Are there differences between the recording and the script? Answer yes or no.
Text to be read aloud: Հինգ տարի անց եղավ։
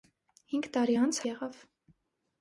no